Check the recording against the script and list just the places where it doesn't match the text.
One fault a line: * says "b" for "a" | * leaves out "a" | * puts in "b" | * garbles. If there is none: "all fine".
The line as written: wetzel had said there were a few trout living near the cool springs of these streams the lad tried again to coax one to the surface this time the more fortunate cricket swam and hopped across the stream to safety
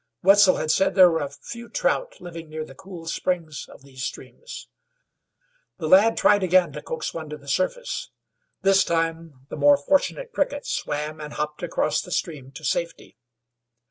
all fine